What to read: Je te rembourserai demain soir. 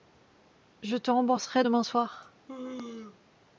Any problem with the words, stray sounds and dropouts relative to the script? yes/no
yes